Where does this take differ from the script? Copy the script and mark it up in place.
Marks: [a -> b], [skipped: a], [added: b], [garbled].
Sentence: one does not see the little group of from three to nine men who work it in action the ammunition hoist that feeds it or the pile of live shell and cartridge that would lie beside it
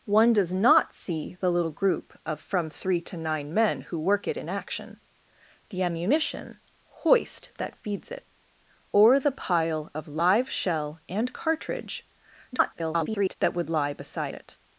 one does not see the little group of from three to nine men who work it in action the ammunition hoist that feeds it or the pile of live shell and cartridge [garbled] that would lie beside it